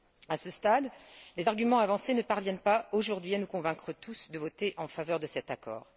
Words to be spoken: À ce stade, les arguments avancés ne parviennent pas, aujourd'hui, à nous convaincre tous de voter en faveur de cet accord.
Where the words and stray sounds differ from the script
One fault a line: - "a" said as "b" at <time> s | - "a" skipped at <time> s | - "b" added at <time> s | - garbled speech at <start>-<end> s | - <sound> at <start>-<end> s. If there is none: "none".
none